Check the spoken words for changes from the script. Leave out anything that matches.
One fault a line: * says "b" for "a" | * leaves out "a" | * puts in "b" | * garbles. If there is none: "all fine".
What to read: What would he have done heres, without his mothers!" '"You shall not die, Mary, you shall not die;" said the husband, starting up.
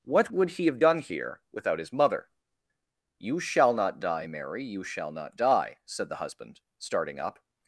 * says "here" for "heres"
* says "mother" for "mothers"